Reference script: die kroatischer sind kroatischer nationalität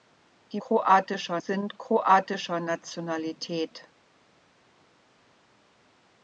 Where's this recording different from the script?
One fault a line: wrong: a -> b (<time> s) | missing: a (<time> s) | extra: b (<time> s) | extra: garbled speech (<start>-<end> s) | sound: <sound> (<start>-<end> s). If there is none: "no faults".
no faults